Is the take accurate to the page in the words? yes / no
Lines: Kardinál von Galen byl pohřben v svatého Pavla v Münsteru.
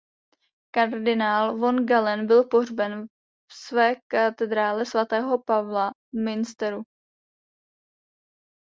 no